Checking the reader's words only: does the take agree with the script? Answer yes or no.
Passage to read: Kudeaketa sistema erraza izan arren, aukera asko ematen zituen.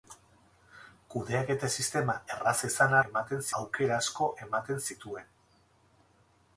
no